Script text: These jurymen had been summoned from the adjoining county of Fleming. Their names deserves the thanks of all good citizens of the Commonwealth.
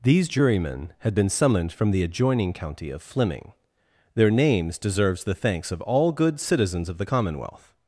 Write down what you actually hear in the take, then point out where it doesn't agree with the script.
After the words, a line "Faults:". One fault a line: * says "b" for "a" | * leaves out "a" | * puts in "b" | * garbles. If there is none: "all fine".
These jurymen had been summoned from the adjoining county of Fleming. Their names deserves the thanks of all good citizens of the Commonwealth.
Faults:
all fine